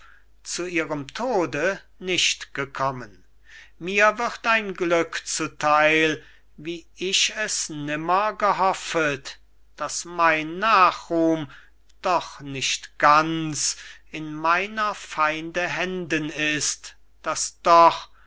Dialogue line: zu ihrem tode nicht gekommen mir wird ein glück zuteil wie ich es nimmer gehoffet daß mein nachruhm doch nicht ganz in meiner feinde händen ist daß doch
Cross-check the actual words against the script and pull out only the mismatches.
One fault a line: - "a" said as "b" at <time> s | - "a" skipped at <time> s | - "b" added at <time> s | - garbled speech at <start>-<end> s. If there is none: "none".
none